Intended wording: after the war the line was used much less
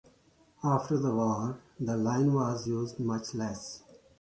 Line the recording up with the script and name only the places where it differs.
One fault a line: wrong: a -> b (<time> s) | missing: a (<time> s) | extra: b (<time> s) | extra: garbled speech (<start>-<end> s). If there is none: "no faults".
no faults